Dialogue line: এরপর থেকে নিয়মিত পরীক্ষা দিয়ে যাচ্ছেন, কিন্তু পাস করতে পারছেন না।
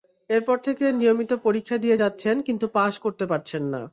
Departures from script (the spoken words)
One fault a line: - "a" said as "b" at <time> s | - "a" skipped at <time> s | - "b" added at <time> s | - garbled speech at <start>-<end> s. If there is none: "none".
none